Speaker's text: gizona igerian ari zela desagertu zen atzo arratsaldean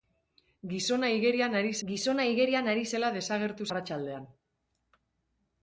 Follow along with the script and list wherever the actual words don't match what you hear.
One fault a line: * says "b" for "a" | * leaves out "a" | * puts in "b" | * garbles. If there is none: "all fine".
* puts in "gizona igerian ari"
* leaves out "zen atzo"